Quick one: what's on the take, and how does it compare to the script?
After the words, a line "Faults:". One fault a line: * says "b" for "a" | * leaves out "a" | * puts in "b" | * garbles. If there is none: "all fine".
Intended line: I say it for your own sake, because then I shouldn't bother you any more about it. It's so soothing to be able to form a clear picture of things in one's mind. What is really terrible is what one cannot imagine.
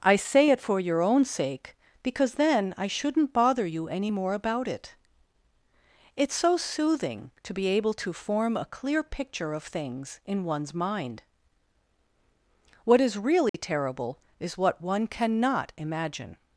I say it for your own sake, because then I shouldn't bother you any more about it. It's so soothing to be able to form a clear picture of things in one's mind. What is really terrible is what one cannot imagine.
Faults:
all fine